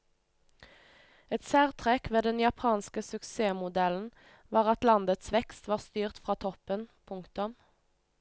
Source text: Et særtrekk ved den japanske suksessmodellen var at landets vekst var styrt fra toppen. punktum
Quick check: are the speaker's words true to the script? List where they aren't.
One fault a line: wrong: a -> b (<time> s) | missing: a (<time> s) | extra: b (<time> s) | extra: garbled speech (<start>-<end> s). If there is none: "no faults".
no faults